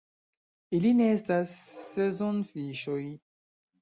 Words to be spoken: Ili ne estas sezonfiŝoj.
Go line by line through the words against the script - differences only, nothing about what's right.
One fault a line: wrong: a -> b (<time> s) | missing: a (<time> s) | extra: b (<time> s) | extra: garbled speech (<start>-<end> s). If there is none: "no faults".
no faults